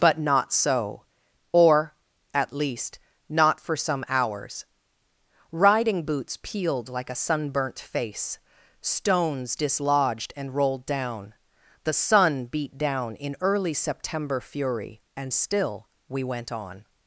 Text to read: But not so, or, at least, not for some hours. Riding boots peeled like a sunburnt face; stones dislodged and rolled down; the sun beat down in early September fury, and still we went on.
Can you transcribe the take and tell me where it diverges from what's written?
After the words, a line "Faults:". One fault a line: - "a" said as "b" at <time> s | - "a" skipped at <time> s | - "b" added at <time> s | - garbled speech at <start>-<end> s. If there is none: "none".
But not so, or, at least, not for some hours. Riding boots peeled like a sunburnt face; stones dislodged and rolled down; the sun beat down in early September fury, and still we went on.
Faults:
none